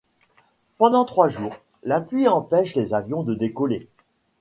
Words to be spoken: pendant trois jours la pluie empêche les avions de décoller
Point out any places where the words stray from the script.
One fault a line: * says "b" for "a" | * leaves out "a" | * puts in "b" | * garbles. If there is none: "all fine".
all fine